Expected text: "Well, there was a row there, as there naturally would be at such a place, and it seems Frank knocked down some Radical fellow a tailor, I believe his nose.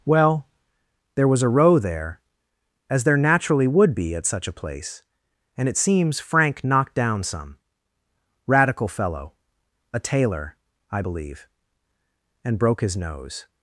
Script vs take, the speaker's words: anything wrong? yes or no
yes